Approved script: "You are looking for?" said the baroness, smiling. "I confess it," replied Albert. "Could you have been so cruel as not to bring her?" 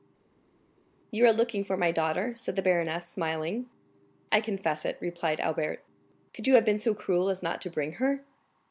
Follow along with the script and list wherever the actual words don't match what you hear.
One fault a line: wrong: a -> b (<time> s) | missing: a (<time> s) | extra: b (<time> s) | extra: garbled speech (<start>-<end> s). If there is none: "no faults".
extra: my daughter (1.8 s)